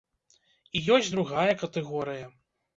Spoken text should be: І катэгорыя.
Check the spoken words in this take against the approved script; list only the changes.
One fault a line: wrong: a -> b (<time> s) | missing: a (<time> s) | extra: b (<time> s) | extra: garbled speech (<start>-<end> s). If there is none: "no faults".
extra: ёсць другая (1.0 s)